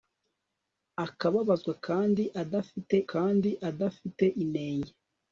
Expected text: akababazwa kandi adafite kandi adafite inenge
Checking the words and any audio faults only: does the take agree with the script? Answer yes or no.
yes